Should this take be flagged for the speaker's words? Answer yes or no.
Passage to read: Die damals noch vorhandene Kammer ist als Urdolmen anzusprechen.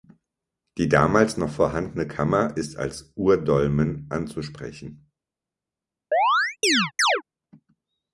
no